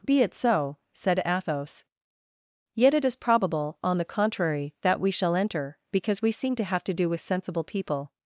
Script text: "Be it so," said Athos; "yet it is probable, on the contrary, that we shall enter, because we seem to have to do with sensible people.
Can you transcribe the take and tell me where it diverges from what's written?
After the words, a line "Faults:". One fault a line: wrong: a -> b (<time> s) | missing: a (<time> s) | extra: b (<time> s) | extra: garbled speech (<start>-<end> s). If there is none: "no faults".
"Be it so," said Athos; "yet it is probable, on the contrary, that we shall enter, because we seem to have to do with sensible people.
Faults:
no faults